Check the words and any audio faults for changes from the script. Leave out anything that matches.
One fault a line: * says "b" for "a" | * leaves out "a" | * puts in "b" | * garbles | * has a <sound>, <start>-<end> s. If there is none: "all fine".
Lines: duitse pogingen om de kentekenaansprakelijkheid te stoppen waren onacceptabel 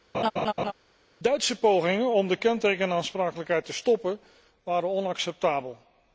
* has a laugh, 0.1-0.7 s